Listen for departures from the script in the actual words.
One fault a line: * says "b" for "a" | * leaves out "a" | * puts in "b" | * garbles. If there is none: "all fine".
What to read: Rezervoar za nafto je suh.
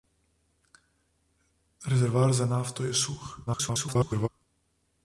* garbles